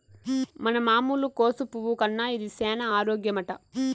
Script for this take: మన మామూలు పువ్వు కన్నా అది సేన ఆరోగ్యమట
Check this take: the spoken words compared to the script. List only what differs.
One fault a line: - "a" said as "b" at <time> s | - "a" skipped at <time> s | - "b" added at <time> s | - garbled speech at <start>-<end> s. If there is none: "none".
- "కోసు" added at 1.4 s
- "అది" said as "ఇది" at 2.4 s